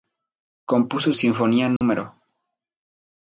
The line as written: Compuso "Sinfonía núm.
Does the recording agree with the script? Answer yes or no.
yes